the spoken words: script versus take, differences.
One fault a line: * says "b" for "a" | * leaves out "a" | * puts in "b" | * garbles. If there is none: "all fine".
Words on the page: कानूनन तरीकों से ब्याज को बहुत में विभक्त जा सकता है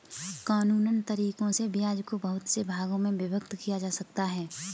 * puts in "से भागों"
* puts in "किया"